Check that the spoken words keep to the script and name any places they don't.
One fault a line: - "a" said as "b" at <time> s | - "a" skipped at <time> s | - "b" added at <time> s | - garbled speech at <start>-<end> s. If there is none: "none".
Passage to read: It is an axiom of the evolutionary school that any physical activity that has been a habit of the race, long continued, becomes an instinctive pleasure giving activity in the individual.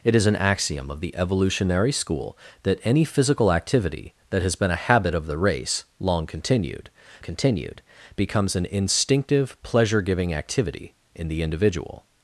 - "continued" added at 7.2 s